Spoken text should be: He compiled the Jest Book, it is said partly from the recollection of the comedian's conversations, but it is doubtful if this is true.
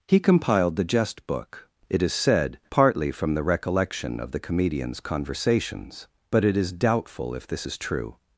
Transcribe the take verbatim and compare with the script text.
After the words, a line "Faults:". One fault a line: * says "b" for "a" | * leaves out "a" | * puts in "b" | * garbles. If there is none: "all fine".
He compiled the Jest Book, it is said partly from the recollection of the comedian's conversations, but it is doubtful if this is true.
Faults:
all fine